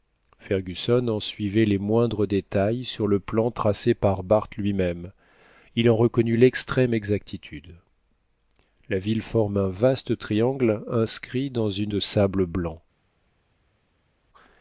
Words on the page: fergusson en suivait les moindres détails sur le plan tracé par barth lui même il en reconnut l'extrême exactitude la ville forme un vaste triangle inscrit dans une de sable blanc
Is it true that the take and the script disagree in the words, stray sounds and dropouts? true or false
false